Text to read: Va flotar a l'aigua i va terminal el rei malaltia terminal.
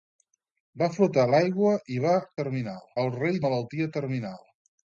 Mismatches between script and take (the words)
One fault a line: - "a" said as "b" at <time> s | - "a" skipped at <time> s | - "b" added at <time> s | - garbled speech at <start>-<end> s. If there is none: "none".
none